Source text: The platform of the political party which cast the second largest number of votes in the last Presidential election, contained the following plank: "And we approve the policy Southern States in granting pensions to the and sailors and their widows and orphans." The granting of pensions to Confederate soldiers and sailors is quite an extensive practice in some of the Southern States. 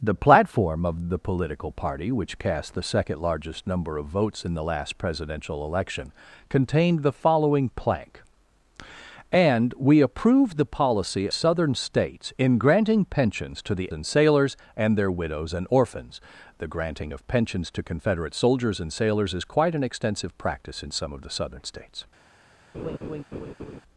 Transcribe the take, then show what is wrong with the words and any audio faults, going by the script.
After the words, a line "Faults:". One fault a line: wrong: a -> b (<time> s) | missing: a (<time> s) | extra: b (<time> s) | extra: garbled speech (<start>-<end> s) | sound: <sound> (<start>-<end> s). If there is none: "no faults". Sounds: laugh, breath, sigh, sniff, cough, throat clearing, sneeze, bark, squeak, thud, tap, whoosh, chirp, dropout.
The platform of the political party which cast the second largest number of votes in the last Presidential election, contained the following plank: "And we approve the policy Southern States in granting pensions to the and sailors and their widows and orphans." The granting of pensions to Confederate soldiers and sailors is quite an extensive practice in some of the Southern States.
Faults:
sound: laugh (22.7-23.8 s)